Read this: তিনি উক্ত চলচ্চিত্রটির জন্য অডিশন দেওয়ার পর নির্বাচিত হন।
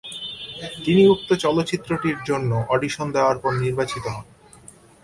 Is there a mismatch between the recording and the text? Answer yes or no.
no